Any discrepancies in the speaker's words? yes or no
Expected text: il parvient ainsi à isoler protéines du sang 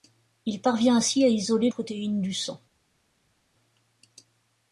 no